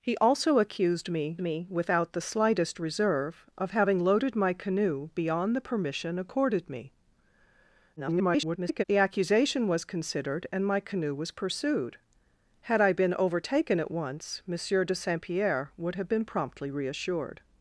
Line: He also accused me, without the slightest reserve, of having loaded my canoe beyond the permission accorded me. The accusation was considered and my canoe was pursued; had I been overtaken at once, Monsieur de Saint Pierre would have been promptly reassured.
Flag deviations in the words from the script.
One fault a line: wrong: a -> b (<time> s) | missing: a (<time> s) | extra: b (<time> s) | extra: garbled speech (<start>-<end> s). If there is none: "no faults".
extra: me (1.4 s)
extra: garbled speech (8.0-8.8 s)